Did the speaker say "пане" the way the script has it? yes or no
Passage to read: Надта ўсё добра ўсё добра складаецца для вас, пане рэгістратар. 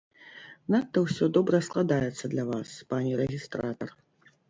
yes